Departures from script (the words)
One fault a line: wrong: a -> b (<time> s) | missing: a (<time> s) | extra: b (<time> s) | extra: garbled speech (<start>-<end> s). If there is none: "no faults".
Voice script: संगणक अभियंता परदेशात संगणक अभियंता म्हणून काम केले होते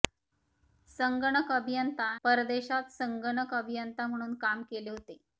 no faults